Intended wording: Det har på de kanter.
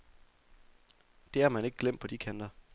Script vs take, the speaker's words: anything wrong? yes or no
yes